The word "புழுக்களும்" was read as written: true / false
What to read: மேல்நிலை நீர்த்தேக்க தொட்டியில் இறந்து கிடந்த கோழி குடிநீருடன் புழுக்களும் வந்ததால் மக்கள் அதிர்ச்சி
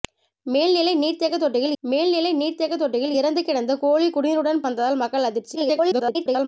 false